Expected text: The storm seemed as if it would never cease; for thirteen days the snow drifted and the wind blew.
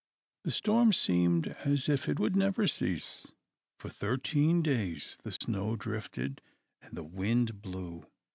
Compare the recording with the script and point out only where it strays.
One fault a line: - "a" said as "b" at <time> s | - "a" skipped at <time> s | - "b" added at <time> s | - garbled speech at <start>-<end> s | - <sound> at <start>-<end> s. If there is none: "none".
- dropout at 5.4-5.4 s